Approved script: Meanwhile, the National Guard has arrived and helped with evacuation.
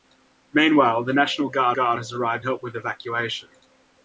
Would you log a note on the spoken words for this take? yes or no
yes